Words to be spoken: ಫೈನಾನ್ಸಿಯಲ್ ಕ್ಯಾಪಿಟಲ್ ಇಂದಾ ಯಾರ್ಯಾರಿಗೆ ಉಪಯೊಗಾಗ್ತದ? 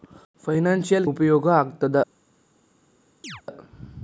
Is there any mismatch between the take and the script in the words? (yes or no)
yes